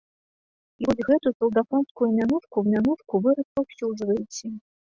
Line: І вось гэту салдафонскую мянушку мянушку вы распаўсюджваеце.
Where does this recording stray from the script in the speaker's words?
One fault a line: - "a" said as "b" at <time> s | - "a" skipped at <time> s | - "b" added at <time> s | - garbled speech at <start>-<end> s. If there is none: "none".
none